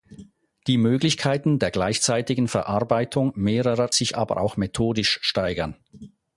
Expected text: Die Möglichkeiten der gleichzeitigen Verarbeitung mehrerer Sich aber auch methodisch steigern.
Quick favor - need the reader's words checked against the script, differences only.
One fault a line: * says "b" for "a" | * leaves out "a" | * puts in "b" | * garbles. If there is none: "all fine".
all fine